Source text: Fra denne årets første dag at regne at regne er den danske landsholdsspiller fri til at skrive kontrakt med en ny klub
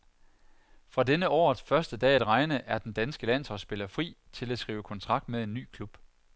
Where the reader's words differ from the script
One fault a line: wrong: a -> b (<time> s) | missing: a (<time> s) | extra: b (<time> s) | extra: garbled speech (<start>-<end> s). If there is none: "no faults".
missing: at regne (2.6 s)